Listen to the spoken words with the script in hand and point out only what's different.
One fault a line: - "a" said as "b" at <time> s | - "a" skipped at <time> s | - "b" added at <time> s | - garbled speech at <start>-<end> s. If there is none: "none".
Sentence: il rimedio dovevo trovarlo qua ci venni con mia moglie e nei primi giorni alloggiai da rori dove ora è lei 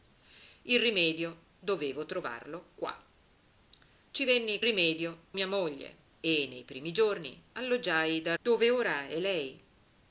- "con" said as "rimedio" at 4.6 s
- "rori" skipped at 8.3 s